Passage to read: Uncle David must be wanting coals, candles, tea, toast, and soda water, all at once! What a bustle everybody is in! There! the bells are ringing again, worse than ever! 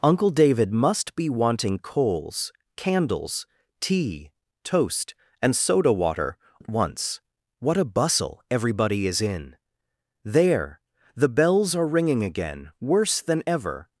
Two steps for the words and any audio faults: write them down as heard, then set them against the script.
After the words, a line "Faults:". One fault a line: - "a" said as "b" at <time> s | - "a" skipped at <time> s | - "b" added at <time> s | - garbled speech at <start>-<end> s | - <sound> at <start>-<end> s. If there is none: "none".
Uncle David must be wanting coals, candles, tea, toast, and soda water, at once! What a bustle everybody is in! There! the bells are ringing again, worse than ever!
Faults:
- "all" skipped at 6.4 s